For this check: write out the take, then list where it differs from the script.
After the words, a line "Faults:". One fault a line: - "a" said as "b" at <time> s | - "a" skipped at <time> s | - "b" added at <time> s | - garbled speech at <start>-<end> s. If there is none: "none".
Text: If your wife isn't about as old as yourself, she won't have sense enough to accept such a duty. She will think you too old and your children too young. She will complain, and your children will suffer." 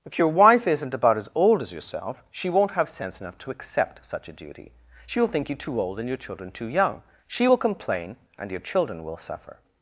If your wife isn't about as old as yourself, she won't have sense enough to accept such a duty. She will think you too old and your children too young. She will complain, and your children will suffer."
Faults:
none